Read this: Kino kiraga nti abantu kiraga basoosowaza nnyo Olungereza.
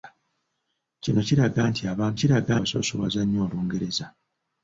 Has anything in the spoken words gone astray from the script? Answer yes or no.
no